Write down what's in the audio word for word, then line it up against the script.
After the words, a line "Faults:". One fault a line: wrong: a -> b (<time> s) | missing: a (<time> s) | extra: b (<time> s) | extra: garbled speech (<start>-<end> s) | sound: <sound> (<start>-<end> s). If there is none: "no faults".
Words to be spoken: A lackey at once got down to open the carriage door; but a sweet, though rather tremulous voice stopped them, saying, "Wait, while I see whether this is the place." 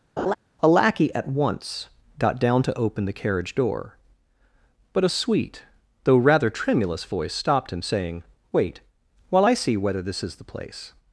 A lackey at once got down to open the carriage door; but a sweet, though rather tremulous voice stopped him, saying, "Wait, while I see whether this is the place."
Faults:
sound: laugh (0.2-0.3 s)
wrong: them -> him (7.7 s)